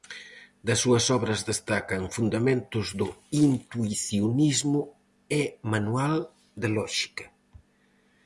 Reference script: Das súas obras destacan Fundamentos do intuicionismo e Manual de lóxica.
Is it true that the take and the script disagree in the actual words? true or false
false